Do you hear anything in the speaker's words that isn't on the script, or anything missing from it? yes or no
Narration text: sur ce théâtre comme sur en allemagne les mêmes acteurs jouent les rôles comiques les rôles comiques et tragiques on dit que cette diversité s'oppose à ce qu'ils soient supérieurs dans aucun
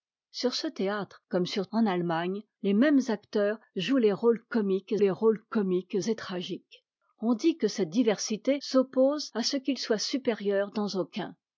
no